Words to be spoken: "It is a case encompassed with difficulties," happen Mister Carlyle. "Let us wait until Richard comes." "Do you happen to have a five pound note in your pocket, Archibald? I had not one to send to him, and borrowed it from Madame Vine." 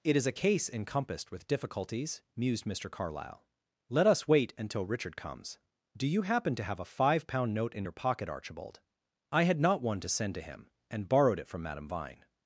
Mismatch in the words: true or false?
true